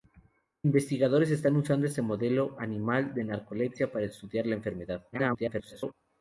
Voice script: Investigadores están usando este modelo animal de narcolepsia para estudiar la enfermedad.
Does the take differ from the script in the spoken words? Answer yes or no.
yes